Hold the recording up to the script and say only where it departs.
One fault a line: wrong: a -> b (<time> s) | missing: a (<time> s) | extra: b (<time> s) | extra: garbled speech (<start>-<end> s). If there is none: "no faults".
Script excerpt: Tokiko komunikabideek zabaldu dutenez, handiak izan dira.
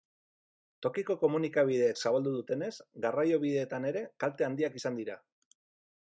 extra: garraiobideetan ere kalte (3.1 s)